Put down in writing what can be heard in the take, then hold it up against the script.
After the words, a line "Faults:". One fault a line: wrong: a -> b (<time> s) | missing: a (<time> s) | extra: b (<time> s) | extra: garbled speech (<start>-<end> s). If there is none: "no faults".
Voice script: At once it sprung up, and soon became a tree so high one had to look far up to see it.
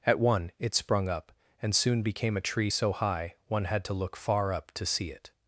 At one it sprung up, and soon became a tree so high one had to look far up to see it.
Faults:
wrong: once -> one (0.2 s)